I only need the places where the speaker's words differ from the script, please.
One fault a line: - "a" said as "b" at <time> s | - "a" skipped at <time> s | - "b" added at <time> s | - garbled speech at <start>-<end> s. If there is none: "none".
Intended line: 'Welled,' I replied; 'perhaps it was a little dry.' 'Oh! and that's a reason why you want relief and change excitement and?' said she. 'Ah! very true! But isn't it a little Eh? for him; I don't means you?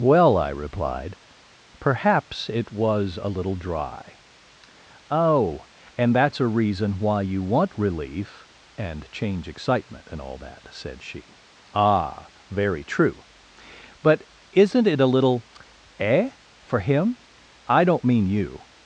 - "Welled" said as "Well" at 0.0 s
- "all that" added at 10.2 s
- "means" said as "mean" at 18.0 s